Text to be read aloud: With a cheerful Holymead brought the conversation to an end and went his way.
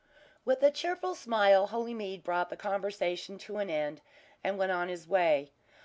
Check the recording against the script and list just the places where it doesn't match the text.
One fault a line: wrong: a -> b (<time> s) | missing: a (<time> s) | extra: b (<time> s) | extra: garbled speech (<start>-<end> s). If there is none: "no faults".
extra: smile (1.1 s)
extra: on (4.7 s)